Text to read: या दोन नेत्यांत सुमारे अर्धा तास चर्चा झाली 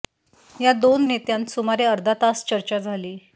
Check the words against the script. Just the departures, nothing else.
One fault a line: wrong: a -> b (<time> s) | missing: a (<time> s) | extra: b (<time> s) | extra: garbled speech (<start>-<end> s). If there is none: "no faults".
no faults